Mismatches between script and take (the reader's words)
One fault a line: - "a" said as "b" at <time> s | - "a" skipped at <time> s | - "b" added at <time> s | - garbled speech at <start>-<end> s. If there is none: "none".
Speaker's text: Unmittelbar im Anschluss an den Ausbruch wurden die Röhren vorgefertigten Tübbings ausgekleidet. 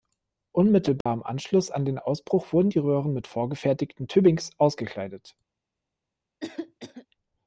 - "mit" added at 3.1 s